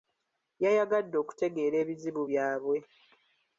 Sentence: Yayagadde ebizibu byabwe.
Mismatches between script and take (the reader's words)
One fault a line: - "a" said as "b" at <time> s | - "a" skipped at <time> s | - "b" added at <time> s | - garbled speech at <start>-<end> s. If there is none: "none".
- "okutegeera" added at 1.2 s